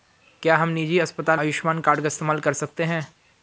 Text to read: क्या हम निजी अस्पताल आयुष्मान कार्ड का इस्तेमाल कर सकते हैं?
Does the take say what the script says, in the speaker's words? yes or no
yes